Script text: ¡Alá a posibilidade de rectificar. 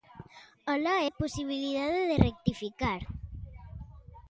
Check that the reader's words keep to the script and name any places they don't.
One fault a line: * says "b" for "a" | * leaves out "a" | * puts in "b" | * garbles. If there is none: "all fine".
all fine